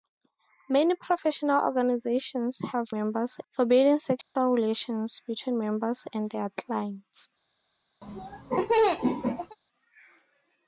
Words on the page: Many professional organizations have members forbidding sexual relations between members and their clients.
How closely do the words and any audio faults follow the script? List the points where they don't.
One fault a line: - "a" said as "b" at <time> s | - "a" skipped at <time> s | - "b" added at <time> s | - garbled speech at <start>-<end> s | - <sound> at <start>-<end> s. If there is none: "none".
- dropout at 4.2-4.4 s
- laugh at 8.0-9.6 s